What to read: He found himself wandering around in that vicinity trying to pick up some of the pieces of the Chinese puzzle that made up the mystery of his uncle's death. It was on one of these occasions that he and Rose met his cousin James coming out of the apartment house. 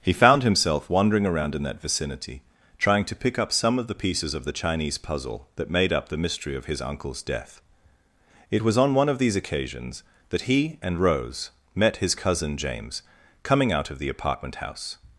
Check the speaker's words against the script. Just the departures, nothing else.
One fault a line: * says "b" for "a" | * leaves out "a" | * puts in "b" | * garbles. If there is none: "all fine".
all fine